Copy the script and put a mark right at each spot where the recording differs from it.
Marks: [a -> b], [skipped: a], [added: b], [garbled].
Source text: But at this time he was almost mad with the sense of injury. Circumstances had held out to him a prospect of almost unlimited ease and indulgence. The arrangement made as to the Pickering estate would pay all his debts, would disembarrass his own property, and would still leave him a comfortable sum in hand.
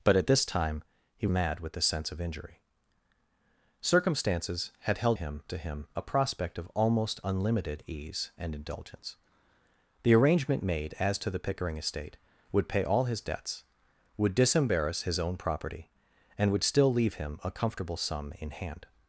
But at this time he [skipped: was almost] mad with the sense of injury. Circumstances had held [out -> him] to him a prospect of almost unlimited ease and indulgence. The arrangement made as to the Pickering estate would pay all his debts, would disembarrass his own property, and would still leave him a comfortable sum in hand.